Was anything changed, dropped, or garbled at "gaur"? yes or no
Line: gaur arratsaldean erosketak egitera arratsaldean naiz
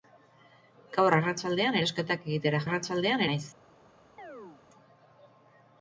no